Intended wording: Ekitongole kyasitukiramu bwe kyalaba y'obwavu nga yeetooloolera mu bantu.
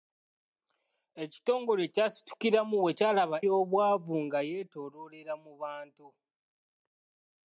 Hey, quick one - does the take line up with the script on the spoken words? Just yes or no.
yes